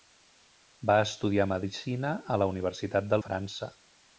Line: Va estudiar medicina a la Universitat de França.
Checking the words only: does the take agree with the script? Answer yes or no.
yes